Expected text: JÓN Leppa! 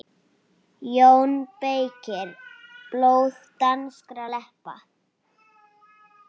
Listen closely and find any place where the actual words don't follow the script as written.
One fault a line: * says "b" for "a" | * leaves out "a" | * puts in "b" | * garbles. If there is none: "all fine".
* puts in "BEYKIR Blóð danskra"